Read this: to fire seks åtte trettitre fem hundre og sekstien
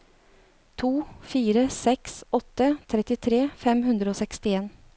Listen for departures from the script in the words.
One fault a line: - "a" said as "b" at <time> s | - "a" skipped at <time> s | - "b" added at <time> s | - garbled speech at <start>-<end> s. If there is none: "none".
none